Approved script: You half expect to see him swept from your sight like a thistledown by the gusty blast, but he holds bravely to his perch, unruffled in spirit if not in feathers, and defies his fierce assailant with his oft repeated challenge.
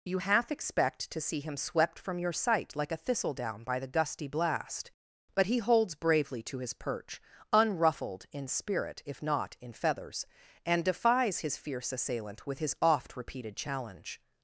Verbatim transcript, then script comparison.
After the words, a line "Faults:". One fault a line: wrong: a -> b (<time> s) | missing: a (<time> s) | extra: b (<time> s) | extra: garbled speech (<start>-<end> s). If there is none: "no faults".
You half expect to see him swept from your sight like a thistledown by the gusty blast, but he holds bravely to his perch, unruffled in spirit if not in feathers, and defies his fierce assailant with his oft repeated challenge.
Faults:
no faults